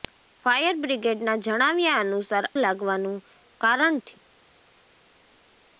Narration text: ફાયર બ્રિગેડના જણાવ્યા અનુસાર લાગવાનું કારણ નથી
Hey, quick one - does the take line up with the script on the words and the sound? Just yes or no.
yes